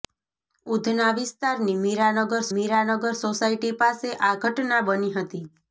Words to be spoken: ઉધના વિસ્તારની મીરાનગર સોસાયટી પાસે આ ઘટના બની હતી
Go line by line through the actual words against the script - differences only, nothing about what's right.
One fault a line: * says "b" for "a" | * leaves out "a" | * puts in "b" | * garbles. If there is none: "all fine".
* puts in "મીરાનગર"